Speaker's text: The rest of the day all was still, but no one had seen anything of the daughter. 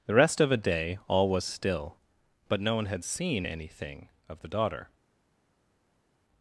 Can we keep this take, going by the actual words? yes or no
no